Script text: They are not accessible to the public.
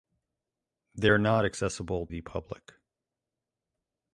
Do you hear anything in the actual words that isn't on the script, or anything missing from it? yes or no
yes